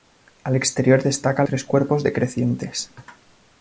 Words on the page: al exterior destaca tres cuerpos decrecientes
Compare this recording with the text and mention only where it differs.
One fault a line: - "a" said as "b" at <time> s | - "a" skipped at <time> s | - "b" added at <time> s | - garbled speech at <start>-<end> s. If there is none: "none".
none